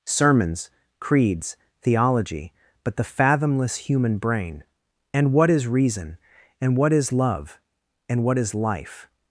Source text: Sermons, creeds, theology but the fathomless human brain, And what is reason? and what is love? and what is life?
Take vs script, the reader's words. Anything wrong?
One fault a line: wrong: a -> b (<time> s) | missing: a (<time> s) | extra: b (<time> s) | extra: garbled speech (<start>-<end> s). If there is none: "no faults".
no faults